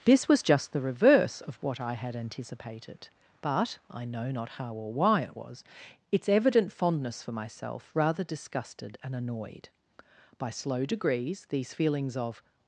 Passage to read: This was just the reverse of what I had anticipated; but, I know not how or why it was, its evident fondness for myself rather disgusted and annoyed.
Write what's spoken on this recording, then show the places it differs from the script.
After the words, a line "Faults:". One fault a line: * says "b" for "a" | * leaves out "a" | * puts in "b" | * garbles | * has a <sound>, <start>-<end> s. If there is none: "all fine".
This was just the reverse of what I had anticipated; but, I know not how or why it was, its evident fondness for myself rather disgusted and annoyed. By slow degrees, these feelings of
Faults:
* puts in "By slow degrees these feelings of"